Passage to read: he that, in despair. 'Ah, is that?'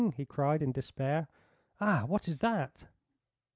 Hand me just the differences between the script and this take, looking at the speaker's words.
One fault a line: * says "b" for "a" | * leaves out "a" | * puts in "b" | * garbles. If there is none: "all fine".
* says "cried" for "that"
* puts in "what"